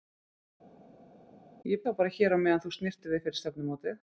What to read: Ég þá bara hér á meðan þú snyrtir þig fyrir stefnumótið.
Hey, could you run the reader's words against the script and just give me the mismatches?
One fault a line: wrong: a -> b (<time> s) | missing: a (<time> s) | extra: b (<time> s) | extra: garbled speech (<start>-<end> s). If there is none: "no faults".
no faults